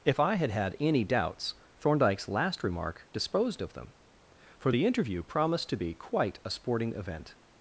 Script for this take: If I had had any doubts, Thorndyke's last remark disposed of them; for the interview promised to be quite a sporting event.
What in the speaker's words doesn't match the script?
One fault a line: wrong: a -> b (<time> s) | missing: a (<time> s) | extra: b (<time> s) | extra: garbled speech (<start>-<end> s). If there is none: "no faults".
no faults